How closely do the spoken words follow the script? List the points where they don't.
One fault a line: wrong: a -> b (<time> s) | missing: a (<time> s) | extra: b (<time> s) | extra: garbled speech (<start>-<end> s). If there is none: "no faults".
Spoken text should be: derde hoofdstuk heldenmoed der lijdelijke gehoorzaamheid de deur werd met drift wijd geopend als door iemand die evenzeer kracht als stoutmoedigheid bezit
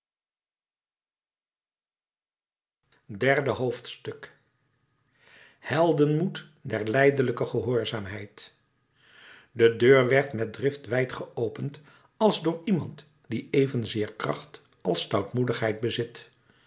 no faults